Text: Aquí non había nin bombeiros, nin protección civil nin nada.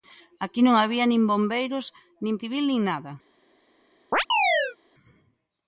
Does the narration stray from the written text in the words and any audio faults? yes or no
yes